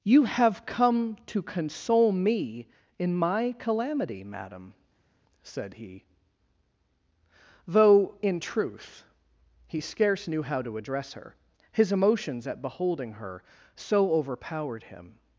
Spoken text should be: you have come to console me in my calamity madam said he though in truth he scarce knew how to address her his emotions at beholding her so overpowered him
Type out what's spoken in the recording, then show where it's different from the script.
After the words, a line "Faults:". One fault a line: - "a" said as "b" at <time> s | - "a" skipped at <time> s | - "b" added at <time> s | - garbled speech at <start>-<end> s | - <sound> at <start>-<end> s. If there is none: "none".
you have come to console me in my calamity madam said he though in truth he scarce knew how to address her his emotions at beholding her so overpowered him
Faults:
none